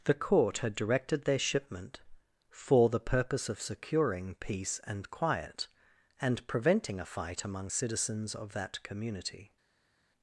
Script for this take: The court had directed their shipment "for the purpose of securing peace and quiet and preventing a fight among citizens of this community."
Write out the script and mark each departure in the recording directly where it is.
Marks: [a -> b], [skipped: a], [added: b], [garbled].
The court had directed their shipment "for the purpose of securing peace and quiet and preventing a fight among citizens of [this -> that] community."